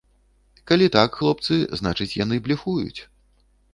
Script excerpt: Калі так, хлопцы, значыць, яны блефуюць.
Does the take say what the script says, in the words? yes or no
yes